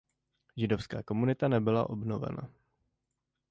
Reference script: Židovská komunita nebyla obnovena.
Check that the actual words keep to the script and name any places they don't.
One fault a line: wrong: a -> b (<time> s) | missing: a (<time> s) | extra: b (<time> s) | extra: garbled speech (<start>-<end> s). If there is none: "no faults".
no faults